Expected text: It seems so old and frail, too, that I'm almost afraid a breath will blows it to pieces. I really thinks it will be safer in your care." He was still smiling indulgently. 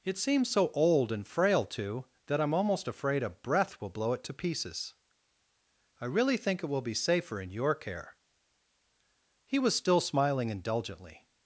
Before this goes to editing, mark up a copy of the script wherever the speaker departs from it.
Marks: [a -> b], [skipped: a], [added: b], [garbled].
It seems so old and frail, too, that I'm almost afraid a breath will [blows -> blow] it to pieces. I really [thinks -> think] it will be safer in your care." He was still smiling indulgently.